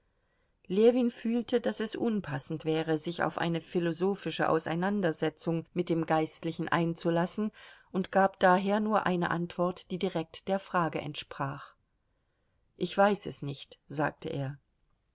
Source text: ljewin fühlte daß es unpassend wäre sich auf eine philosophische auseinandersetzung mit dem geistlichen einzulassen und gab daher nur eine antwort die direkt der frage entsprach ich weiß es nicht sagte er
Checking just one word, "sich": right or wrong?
right